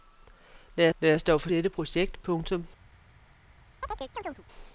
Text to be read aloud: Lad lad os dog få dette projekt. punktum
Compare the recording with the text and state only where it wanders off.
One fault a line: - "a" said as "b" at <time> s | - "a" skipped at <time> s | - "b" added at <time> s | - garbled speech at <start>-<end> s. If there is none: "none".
none